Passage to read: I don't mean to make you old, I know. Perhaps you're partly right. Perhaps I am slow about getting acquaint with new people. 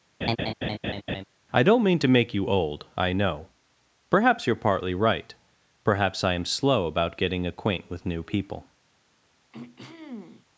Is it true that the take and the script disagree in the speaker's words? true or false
false